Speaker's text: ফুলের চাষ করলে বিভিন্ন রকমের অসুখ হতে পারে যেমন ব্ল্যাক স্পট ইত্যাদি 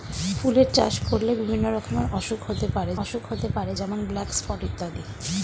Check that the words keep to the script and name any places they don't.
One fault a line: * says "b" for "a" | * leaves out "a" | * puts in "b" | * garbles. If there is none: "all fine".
* puts in "অসুখ হতে পারে"